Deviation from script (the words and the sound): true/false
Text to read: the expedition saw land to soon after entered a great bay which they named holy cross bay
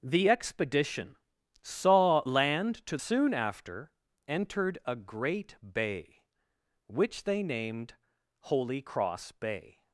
false